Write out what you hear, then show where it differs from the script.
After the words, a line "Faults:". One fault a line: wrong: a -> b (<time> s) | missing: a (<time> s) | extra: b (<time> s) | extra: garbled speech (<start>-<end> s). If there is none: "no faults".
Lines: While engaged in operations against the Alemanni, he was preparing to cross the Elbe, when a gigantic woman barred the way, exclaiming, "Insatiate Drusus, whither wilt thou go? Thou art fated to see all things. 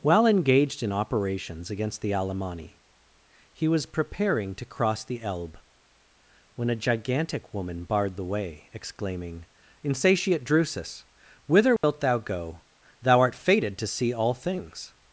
While engaged in operations against the Alemanni, he was preparing to cross the Elbe, when a gigantic woman barred the way, exclaiming, "Insatiate Drusus, whither wilt thou go? Thou art fated to see all things.
Faults:
no faults